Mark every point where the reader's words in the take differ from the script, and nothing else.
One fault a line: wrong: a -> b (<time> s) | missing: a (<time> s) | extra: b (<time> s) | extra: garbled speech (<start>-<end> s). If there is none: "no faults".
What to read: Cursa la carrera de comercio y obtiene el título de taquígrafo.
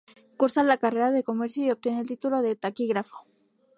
no faults